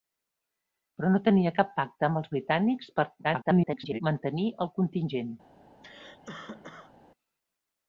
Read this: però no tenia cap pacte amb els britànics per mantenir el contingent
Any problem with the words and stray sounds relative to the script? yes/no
yes